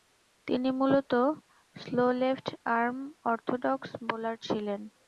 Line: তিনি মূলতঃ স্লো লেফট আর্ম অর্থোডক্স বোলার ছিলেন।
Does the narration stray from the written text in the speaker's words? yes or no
no